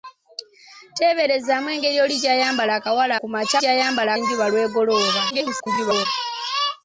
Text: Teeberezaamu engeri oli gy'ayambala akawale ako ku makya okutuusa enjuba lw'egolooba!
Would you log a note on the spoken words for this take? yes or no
yes